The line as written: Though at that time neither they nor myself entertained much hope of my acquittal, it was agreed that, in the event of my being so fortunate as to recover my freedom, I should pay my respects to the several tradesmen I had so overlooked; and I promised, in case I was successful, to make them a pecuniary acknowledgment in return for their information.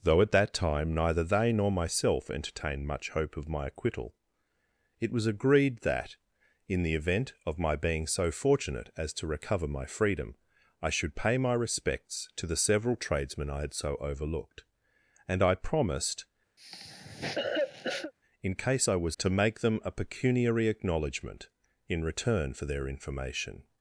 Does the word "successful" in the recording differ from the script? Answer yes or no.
yes